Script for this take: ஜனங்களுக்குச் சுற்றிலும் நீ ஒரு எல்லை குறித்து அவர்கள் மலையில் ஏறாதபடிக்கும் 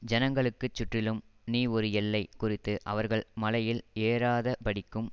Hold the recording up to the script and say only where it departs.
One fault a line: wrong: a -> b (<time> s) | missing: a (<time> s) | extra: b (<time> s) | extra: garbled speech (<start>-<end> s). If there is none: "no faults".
no faults